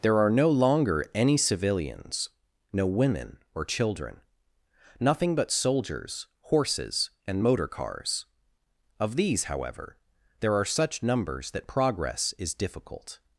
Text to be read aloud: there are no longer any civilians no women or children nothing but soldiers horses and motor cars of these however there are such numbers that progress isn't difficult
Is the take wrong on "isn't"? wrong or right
wrong